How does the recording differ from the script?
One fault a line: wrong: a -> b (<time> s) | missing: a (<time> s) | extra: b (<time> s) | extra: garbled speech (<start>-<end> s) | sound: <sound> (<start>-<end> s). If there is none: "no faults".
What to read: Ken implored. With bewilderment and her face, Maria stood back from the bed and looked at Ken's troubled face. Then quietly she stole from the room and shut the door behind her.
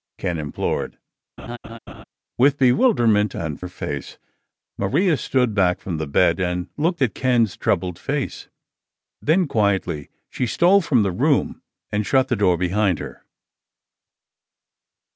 sound: laugh (1.4-2.0 s)